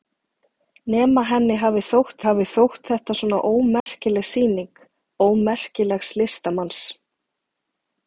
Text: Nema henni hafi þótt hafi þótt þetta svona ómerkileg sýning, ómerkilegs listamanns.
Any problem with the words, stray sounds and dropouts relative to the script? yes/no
yes